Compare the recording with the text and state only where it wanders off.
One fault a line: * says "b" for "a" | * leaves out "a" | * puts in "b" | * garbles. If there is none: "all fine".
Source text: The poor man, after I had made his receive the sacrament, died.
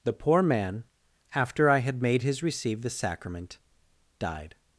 all fine